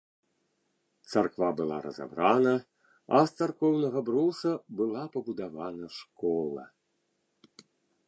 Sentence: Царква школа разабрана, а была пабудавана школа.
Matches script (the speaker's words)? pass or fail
fail